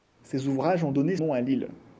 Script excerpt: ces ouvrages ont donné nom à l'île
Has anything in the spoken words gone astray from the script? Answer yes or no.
no